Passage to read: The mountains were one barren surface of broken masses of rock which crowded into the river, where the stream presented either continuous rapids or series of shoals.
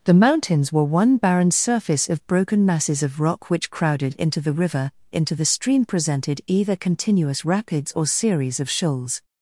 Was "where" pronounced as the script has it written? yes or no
no